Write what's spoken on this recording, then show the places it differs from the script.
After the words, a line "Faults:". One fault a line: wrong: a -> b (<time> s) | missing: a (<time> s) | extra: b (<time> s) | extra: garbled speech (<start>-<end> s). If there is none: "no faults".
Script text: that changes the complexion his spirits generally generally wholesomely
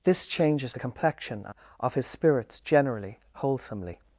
this changes the complexion of his spirits generally wholesomely
Faults:
wrong: that -> this (0.0 s)
extra: of (1.8 s)
missing: generally (3.2 s)